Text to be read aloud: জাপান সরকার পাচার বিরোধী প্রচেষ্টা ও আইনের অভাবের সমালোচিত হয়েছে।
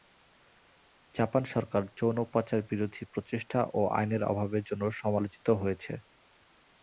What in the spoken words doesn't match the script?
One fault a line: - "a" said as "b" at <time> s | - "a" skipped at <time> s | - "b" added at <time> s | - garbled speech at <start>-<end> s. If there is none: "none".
- "যৌন" added at 2.0 s
- "জন্য" added at 4.7 s